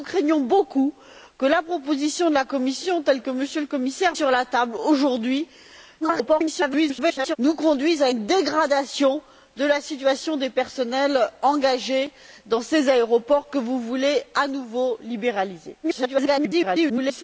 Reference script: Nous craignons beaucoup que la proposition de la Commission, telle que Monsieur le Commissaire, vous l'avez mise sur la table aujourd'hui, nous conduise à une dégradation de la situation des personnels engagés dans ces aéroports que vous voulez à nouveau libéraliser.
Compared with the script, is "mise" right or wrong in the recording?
wrong